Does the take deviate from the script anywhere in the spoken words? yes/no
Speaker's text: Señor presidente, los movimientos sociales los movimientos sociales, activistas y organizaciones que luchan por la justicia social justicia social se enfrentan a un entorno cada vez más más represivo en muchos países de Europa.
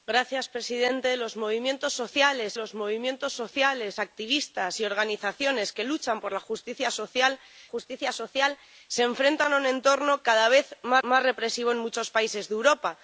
no